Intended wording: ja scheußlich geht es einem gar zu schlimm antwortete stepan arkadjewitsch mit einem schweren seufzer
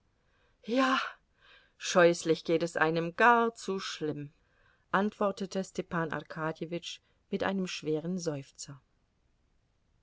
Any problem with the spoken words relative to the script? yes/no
no